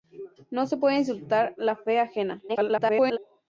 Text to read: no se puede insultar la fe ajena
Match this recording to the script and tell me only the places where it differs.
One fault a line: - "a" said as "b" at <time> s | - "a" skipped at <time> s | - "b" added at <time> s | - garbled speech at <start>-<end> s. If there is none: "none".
- garbled speech at 2.5-3.2 s